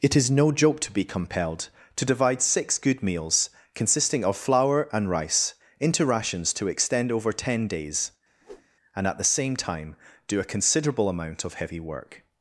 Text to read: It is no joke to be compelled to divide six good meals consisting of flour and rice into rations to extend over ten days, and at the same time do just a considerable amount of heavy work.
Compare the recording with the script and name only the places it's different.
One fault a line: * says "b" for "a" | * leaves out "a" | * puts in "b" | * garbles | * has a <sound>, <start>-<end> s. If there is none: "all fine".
* has a whoosh, 8.4-8.7 s
* leaves out "just"